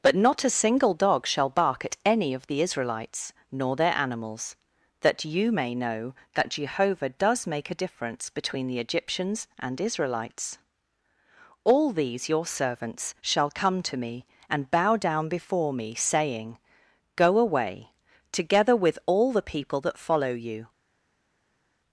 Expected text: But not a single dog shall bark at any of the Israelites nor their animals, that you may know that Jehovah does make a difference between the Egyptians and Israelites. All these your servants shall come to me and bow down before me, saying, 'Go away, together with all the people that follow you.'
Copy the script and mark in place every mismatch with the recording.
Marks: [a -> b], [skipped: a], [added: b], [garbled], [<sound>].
But not a single dog shall bark at any of the Israelites nor their animals, that you may know that Jehovah does make a difference between the Egyptians and Israelites. All these your servants shall come to me and bow down before me, saying, 'Go away, together with all the people that follow you.'